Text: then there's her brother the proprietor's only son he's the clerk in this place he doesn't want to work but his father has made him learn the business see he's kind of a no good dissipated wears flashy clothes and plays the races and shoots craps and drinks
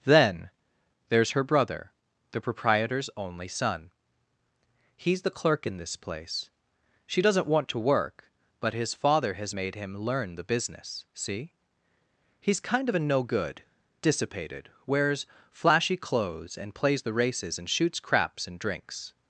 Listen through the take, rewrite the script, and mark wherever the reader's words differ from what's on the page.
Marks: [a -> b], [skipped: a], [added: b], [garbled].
then there's her brother the proprietor's only son he's the clerk in this place [he -> she] doesn't want to work but his father has made him learn the business see he's kind of a no good dissipated wears flashy clothes and plays the races and shoots craps and drinks